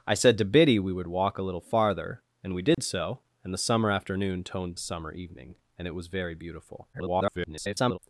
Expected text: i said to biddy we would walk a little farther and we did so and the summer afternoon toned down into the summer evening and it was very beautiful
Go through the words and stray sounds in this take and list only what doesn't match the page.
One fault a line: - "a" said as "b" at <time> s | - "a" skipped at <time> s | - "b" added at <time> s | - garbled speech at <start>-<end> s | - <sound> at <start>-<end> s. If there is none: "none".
- dropout at 2.7-2.8 s
- "down into the" skipped at 4.8 s
- garbled speech at 6.9-8.0 s